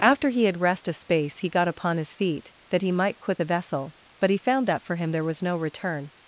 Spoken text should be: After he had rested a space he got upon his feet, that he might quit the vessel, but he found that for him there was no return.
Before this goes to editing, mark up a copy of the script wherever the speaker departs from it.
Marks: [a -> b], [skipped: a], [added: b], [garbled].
After he had [rested -> rest] a space he got upon his feet, that he might quit the vessel, but he found that for him there was no return.